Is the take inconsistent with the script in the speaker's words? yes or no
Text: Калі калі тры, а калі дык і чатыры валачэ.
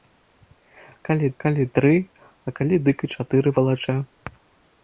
no